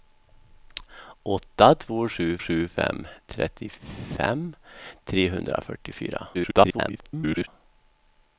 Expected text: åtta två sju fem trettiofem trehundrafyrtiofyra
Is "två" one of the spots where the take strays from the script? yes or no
no